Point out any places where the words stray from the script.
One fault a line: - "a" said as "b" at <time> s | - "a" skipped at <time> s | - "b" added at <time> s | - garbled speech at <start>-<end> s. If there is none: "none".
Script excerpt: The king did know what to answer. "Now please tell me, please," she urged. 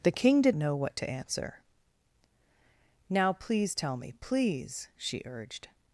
none